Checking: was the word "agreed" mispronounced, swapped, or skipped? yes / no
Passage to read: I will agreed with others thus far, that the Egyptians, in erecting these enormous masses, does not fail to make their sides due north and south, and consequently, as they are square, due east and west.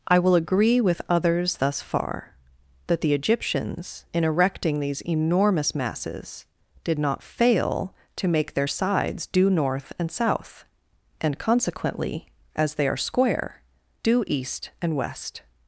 yes